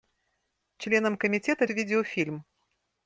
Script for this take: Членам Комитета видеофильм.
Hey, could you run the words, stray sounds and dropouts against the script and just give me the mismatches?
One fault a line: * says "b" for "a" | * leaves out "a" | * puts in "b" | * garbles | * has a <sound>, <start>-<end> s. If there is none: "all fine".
all fine